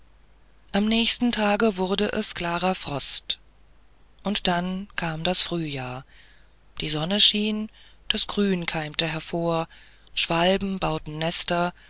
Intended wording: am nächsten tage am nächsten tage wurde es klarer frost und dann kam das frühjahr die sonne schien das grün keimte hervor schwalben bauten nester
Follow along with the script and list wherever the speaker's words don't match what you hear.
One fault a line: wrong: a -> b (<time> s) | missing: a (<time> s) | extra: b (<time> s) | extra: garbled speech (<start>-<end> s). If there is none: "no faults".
missing: am nächsten tage (1.8 s)